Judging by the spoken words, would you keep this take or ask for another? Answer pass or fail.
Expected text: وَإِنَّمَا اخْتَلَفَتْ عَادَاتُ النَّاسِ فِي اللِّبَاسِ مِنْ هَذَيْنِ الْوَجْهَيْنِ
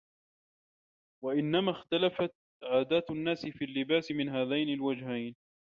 pass